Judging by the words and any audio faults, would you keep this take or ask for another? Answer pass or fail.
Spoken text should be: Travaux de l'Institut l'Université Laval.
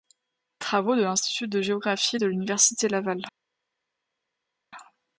fail